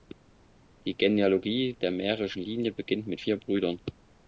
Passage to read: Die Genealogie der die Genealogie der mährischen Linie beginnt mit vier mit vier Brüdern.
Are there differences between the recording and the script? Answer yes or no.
yes